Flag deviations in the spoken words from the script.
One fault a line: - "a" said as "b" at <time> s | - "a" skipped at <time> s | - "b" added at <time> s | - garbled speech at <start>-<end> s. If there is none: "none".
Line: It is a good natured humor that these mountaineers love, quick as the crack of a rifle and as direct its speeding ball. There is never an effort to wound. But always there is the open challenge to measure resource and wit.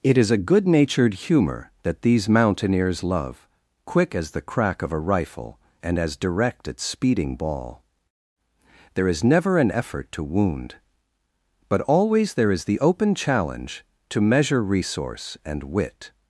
none